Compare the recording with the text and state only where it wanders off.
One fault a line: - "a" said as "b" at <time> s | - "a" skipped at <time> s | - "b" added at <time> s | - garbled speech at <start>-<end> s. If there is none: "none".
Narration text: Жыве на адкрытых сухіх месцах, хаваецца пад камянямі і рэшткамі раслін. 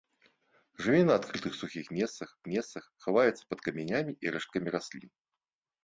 - "месцах" added at 2.5 s